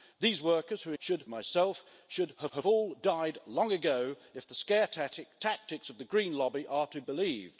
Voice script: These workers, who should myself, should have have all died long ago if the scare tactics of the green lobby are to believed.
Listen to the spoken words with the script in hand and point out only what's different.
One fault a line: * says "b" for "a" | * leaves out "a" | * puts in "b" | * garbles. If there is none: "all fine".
all fine